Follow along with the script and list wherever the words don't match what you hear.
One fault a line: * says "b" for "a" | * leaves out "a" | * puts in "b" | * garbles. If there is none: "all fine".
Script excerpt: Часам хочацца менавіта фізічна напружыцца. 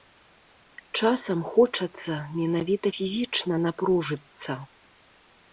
all fine